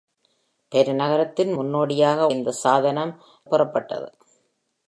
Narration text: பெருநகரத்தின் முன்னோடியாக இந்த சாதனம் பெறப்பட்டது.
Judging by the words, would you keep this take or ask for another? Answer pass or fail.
pass